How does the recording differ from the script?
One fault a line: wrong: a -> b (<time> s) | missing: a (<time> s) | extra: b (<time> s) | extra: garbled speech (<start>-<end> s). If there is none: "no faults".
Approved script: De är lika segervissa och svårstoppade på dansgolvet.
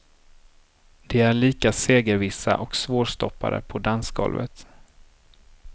no faults